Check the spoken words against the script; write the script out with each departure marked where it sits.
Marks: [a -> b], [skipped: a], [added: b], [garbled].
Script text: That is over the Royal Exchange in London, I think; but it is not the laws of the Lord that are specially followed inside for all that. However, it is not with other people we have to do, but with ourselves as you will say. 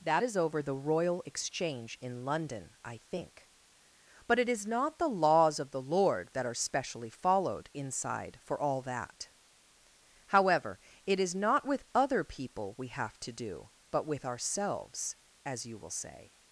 That is over the Royal Exchange in London, I think; but it is not the laws of the Lord that are specially followed inside for all that. However, it is not with other people we have to do, but with ourselves as you will say.